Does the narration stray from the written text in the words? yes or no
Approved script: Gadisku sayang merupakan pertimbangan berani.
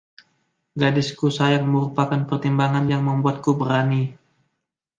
yes